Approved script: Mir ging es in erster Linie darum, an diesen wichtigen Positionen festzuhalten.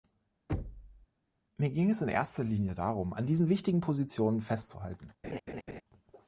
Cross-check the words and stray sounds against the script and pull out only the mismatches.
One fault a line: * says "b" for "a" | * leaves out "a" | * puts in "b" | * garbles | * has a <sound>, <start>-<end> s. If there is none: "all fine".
* has a thud, 0.5-1.1 s
* has a laugh, 5.2-5.8 s